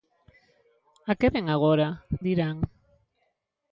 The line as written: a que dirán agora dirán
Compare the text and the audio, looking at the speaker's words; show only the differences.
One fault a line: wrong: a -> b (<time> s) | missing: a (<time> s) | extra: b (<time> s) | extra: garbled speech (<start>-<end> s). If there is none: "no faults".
wrong: dirán -> vén (1.3 s)